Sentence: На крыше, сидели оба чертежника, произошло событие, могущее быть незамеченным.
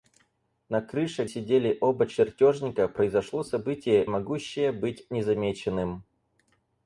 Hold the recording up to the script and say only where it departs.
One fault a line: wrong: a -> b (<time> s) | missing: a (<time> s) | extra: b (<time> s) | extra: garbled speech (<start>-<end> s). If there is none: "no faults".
no faults